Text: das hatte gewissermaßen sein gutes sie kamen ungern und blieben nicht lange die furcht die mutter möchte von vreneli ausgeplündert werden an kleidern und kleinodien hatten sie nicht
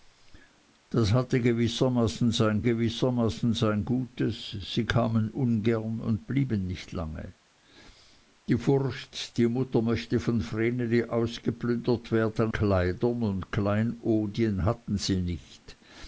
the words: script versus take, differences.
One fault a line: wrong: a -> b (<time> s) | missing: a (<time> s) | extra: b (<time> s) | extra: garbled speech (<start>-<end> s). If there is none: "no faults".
extra: gewissermaßen sein (2.6 s)
missing: an (12.5 s)